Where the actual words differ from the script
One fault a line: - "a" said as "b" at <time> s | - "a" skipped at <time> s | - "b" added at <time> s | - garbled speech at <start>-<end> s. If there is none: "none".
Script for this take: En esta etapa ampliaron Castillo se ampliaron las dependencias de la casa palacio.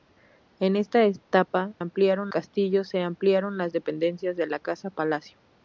none